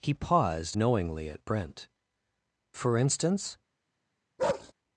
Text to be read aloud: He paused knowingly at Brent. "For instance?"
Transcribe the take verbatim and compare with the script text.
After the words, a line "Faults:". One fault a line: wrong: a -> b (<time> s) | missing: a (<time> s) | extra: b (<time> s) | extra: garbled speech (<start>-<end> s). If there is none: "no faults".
He paused knowingly at Brent. "For instance?"
Faults:
no faults